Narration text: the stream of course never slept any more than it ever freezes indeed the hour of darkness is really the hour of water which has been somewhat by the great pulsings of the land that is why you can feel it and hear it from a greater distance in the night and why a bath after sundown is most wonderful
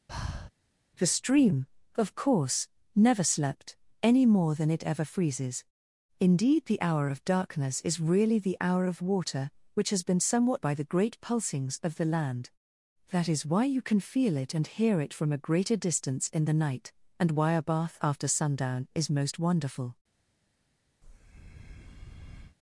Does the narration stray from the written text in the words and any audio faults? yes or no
yes